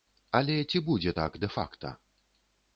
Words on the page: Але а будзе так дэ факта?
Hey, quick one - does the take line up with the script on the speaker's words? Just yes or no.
no